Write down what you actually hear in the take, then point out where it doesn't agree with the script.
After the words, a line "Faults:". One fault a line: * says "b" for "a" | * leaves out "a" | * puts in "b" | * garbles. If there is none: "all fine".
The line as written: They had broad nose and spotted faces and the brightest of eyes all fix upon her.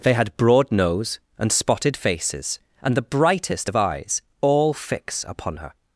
They had broad nose and spotted faces and the brightest of eyes all fix upon her.
Faults:
all fine